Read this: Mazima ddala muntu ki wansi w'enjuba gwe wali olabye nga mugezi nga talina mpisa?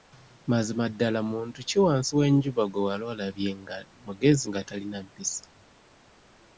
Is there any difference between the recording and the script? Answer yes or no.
no